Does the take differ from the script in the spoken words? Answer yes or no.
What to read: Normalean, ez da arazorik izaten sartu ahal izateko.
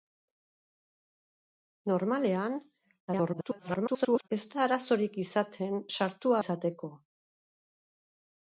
yes